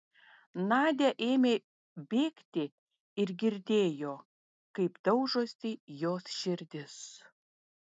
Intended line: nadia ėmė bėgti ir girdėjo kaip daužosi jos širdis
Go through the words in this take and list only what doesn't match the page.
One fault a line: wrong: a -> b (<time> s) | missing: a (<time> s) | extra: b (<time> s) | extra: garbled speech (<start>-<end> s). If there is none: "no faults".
no faults